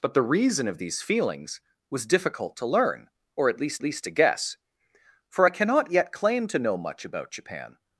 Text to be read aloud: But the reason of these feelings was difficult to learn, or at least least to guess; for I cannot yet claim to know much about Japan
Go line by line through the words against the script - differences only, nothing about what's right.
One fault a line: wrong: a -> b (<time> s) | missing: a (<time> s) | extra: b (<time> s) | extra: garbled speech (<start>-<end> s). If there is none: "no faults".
no faults